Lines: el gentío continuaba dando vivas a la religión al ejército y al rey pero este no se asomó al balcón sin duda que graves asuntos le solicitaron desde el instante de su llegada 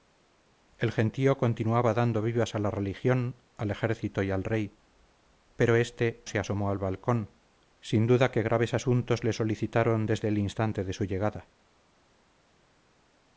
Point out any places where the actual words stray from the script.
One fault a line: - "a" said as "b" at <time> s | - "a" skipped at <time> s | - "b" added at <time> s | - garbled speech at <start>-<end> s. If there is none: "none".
- "no" skipped at 6.2 s